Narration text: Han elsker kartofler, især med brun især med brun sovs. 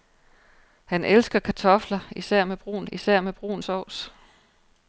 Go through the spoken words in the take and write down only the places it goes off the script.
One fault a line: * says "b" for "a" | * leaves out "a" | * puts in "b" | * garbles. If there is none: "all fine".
all fine